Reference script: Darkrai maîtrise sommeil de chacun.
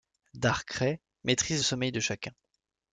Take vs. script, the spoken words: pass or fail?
pass